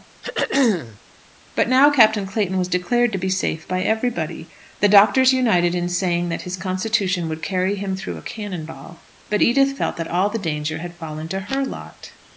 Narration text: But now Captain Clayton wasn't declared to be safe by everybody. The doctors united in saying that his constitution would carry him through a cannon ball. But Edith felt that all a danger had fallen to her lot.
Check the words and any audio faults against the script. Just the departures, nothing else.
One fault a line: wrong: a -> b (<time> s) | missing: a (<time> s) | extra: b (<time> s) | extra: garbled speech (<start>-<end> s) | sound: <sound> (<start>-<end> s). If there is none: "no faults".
sound: throat clearing (0.2-1.0 s)
wrong: wasn't -> was (2.6 s)
wrong: a -> the (10.3 s)